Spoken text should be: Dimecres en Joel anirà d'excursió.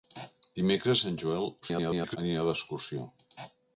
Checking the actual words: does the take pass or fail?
fail